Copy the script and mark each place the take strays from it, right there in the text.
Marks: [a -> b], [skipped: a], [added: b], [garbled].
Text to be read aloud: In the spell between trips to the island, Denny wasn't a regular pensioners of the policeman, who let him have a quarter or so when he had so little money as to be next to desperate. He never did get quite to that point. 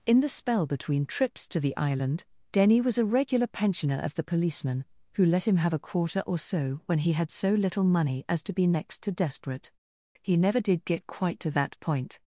In the spell between trips to the island, Denny [wasn't -> was] a regular [pensioners -> pensioner] of the policeman, who let him have a quarter or so when he had so little money as to be next to desperate. He never did get quite to that point.